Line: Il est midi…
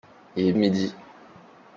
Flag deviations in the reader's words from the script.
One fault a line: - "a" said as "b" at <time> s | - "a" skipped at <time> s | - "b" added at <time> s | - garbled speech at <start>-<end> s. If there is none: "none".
none